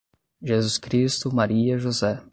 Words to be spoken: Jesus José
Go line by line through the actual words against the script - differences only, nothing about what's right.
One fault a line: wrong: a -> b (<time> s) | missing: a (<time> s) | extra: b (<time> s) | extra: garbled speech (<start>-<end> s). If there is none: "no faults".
extra: Cristo Maria (0.8 s)